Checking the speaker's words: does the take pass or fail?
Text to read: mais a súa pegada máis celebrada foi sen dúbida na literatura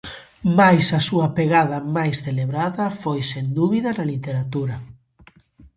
pass